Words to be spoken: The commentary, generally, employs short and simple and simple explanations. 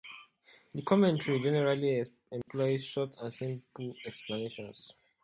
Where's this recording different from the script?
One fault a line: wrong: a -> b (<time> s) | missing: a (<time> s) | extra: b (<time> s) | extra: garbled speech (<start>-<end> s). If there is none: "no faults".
missing: and simple (3.9 s)